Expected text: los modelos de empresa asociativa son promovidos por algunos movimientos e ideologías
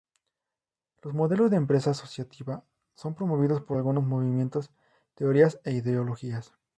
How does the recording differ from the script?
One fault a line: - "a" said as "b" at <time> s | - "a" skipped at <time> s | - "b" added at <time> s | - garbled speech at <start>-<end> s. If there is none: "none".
- "teorías" added at 5.1 s